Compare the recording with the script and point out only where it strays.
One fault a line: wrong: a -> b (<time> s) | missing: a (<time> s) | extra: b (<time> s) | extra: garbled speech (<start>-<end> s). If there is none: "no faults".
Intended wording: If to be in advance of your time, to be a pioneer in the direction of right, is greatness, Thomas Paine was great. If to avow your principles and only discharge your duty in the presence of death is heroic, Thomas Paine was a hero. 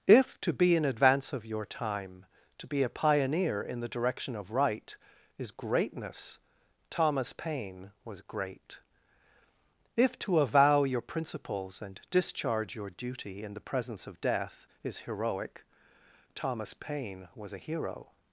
missing: only (12.0 s)